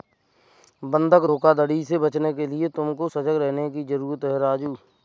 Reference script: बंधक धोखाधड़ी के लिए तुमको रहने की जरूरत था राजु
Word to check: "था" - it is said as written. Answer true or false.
false